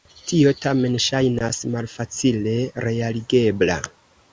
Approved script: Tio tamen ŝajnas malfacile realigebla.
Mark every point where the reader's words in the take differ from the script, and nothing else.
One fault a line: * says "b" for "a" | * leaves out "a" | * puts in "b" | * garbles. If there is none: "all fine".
all fine